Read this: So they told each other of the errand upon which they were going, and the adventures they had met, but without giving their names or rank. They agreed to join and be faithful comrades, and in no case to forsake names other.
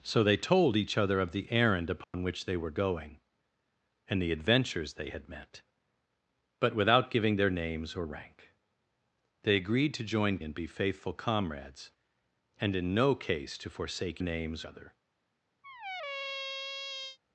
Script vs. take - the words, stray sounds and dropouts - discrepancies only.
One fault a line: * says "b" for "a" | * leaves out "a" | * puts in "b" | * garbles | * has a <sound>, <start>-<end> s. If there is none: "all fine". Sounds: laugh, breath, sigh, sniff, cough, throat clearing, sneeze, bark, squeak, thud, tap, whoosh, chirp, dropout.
* has a dropout, 2.0-2.1 s
* has a squeak, 15.6-17.2 s